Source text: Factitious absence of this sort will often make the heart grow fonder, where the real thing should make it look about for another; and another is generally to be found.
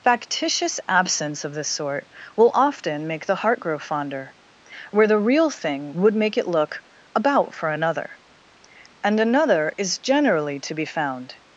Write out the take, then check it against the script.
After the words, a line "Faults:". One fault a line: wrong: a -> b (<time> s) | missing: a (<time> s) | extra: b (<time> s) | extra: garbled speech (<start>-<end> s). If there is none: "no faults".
Factitious absence of this sort will often make the heart grow fonder, where the real thing would make it look about for another; and another is generally to be found.
Faults:
wrong: should -> would (5.9 s)